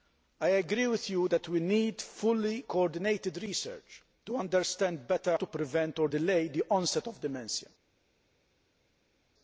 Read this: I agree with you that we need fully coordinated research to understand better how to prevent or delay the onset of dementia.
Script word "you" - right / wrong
right